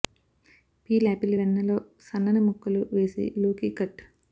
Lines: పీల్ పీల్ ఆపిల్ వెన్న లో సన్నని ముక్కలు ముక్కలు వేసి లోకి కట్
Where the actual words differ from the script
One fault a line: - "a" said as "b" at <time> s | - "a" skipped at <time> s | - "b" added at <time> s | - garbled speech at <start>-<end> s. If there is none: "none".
- "పీల్" skipped at 1.1 s
- "ముక్కలు" skipped at 2.8 s